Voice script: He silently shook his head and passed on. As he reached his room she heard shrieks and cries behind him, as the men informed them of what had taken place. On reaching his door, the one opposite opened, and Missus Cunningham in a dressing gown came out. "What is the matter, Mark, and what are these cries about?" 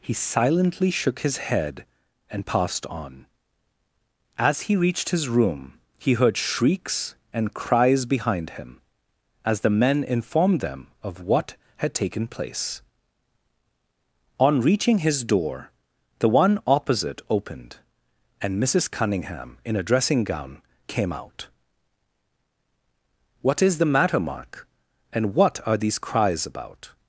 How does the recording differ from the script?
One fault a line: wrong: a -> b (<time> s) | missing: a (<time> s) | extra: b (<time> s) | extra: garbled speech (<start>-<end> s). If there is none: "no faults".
wrong: she -> he (6.0 s)